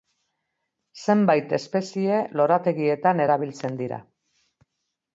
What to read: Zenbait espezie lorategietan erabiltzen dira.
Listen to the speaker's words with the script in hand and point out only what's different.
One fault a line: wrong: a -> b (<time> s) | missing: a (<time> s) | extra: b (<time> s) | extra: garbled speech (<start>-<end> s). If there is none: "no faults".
no faults